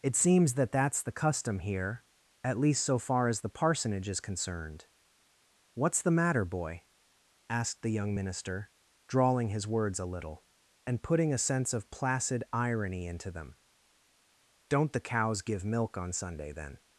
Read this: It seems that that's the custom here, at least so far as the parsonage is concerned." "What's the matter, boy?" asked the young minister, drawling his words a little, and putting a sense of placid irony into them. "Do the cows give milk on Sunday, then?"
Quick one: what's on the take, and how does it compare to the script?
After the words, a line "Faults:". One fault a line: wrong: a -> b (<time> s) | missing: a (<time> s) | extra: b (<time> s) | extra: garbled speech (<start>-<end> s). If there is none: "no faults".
It seems that that's the custom here, at least so far as the parsonage is concerned." "What's the matter, boy?" asked the young minister, drawling his words a little, and putting a sense of placid irony into them. "Don't the cows give milk on Sunday, then?"
Faults:
wrong: Do -> Don't (14.7 s)